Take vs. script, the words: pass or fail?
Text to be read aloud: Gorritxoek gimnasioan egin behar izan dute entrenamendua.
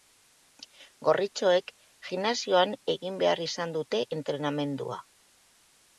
pass